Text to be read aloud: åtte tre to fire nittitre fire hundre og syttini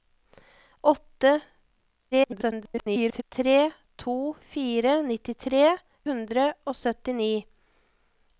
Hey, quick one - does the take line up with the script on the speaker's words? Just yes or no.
no